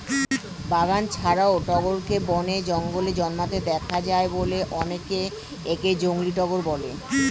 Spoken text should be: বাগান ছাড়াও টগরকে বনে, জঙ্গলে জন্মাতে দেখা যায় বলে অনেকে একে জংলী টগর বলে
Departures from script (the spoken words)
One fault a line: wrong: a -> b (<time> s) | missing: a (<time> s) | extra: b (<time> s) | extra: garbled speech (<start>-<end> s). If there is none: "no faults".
no faults